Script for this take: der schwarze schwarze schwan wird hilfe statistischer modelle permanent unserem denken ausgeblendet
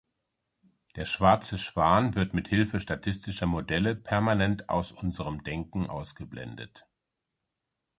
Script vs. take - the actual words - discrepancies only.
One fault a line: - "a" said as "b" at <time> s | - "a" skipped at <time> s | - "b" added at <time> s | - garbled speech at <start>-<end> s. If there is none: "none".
- "schwarze" skipped at 1.6 s
- "mit" added at 2.3 s
- "aus" added at 4.7 s